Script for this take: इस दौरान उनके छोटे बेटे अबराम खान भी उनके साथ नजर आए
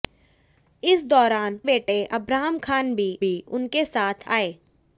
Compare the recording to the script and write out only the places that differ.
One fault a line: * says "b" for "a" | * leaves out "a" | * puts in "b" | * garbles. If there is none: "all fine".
* leaves out "उनके छोटे"
* puts in "भी"
* leaves out "नजर"